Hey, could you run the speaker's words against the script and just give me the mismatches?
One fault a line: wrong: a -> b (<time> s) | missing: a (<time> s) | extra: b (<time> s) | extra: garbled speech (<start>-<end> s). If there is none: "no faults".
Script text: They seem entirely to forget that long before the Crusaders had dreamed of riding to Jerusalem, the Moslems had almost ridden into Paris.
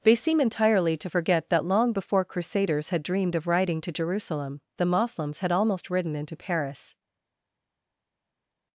missing: the (2.2 s)